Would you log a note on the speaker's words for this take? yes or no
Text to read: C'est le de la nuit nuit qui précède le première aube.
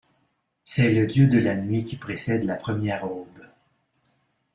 yes